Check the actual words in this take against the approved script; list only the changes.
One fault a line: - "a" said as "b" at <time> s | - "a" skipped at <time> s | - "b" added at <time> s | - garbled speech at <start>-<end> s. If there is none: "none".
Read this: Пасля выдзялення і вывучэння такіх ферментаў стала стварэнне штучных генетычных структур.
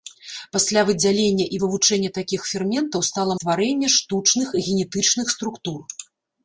none